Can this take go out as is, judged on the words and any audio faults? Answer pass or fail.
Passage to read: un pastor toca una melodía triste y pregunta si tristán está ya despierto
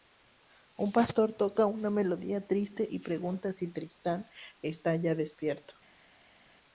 pass